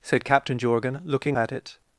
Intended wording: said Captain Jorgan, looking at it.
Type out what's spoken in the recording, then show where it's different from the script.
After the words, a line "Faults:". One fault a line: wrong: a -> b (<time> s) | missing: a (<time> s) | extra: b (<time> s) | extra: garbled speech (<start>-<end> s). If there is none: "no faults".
said Captain Jorgan, looking at it.
Faults:
no faults